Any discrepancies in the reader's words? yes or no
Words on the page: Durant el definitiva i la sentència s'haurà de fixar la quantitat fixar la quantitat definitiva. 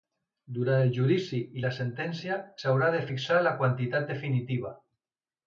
yes